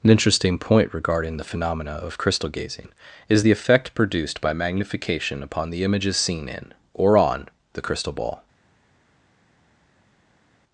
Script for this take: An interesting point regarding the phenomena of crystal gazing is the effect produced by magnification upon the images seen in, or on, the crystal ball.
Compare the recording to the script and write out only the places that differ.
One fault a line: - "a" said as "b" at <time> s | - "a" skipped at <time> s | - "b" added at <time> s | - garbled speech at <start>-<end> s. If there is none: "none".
none